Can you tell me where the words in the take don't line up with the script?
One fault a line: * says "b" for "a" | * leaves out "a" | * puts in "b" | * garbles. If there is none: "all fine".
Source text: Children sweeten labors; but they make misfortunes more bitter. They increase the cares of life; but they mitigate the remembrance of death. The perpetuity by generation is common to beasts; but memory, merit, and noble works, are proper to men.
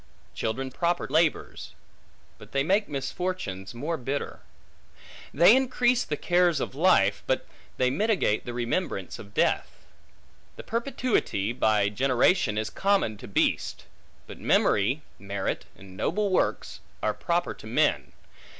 * says "proper" for "sweeten"